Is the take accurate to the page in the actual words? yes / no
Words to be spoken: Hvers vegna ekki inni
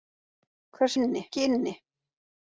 no